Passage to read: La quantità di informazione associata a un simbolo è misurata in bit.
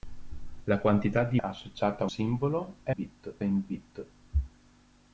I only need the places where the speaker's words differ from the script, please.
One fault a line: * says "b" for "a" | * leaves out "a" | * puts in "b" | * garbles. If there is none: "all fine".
* leaves out "informazione"
* leaves out "un"
* says "bit" for "misurata"